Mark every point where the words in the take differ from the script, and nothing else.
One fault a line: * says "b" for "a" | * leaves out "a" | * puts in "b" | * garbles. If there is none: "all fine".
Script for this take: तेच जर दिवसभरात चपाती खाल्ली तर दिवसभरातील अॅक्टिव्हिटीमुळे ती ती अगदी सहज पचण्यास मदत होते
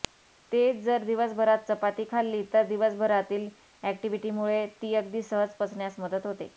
* leaves out "ती"